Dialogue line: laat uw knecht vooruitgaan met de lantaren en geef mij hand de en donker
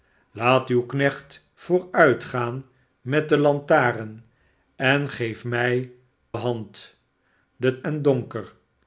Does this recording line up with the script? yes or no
yes